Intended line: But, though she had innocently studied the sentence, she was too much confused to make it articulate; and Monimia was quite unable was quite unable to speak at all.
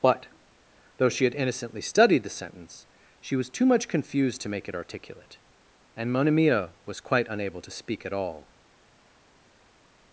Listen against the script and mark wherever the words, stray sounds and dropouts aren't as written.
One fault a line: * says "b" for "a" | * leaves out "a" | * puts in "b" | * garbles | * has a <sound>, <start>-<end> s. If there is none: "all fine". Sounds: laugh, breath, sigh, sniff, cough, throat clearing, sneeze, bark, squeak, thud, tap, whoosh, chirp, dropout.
* leaves out "was quite unable"